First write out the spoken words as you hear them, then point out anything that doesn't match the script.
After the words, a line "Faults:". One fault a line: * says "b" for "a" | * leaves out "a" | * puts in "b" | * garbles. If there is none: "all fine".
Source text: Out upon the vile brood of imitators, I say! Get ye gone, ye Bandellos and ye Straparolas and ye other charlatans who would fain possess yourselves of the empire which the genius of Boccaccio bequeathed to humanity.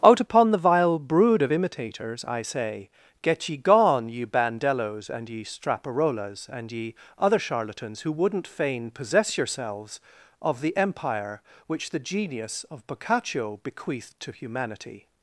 Out upon the vile brood of imitators, I say! Get ye gone, ye Bandellos and ye Straparolas and ye other charlatans who wouldn't fain possess yourselves of the empire which the genius of Boccaccio bequeathed to humanity.
Faults:
* says "wouldn't" for "would"